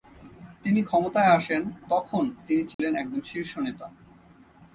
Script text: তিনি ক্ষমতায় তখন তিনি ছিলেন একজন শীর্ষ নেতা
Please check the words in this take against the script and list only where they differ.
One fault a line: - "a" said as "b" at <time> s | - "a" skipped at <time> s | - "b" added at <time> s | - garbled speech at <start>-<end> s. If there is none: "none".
- "আসেন" added at 1.3 s